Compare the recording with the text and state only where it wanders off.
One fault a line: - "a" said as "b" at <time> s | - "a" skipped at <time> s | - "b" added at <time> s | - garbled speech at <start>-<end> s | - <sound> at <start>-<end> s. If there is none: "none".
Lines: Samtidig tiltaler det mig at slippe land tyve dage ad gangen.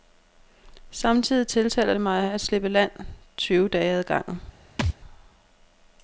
- thud at 4.8-5.0 s